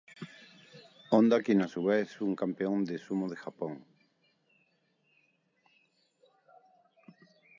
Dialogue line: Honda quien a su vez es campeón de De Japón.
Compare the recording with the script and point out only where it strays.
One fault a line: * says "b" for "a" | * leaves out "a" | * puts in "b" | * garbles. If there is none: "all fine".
* puts in "un"
* puts in "Sumo"